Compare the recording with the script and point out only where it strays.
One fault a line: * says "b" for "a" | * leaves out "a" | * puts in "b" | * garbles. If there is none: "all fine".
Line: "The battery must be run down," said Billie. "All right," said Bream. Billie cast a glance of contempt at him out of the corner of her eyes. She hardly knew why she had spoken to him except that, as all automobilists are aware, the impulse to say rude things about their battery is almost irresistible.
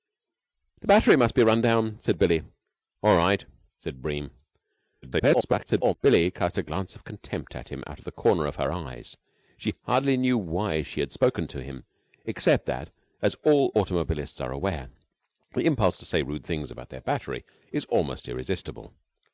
* garbles